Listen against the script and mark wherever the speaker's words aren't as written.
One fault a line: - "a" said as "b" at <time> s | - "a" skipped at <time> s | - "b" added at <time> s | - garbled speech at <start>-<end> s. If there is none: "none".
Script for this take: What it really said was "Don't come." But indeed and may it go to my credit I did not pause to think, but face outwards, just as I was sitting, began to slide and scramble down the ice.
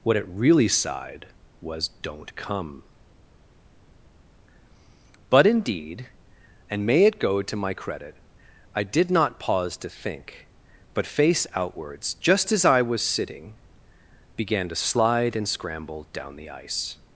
- "said" said as "sighed" at 0.7 s